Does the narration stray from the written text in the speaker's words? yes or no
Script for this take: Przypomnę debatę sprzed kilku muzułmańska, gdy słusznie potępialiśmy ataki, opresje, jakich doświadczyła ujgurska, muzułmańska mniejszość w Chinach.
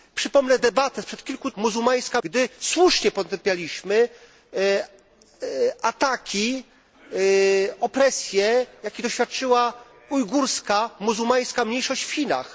no